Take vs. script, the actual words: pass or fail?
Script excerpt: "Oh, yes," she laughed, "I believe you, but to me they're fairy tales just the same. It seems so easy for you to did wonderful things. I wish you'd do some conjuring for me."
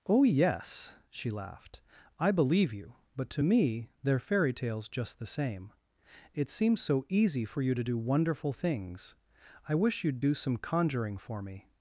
fail